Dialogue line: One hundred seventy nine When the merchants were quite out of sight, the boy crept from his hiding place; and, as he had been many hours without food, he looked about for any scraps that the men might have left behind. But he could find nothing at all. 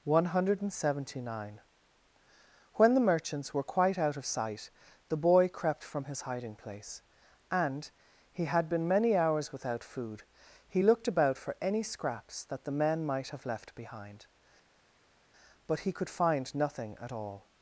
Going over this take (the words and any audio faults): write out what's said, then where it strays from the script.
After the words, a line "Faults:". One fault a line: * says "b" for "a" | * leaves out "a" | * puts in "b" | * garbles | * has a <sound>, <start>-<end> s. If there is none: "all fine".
One hundred seventy nine When the merchants were quite out of sight, the boy crept from his hiding place; and, he had been many hours without food, he looked about for any scraps that the men might have left behind. But he could find nothing at all.
Faults:
* leaves out "as"